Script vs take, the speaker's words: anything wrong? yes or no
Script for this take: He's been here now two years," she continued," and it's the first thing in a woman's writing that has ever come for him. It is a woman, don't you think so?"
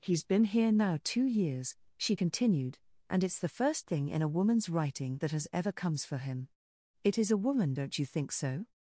yes